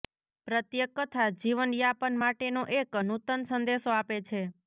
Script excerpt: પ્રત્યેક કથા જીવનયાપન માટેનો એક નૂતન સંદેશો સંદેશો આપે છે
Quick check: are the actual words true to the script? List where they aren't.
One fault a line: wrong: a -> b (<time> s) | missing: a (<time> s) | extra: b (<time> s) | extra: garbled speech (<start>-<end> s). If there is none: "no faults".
missing: સંદેશો (3.9 s)